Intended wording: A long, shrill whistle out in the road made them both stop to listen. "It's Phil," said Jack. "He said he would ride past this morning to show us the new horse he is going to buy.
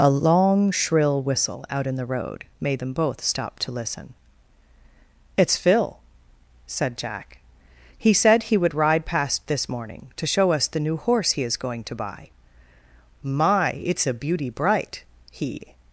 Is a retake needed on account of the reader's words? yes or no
yes